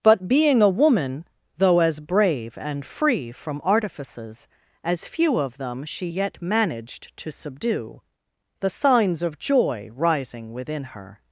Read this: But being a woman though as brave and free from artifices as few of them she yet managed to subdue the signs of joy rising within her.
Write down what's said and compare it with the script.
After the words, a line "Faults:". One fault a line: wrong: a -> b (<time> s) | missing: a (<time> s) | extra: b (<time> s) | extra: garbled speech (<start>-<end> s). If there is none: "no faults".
But being a woman though as brave and free from artifices as few of them she yet managed to subdue the signs of joy rising within her.
Faults:
no faults